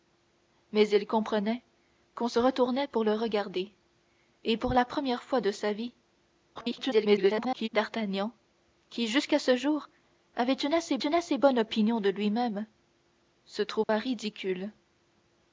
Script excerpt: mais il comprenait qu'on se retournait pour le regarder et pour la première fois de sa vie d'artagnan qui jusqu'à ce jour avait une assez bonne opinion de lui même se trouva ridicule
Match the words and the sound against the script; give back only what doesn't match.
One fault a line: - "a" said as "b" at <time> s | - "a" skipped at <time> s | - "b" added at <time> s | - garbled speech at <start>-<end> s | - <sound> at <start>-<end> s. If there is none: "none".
- garbled speech at 6.5-7.7 s
- "une assez" added at 10.9 s
- dropout at 13.8-13.9 s